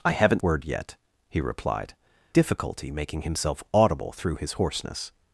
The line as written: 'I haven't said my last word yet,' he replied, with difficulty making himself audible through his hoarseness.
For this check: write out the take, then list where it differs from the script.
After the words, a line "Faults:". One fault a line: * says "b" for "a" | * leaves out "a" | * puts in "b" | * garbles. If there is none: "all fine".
'I haven't word yet,' he replied, difficulty making himself audible through his hoarseness.
Faults:
* leaves out "said my last"
* leaves out "with"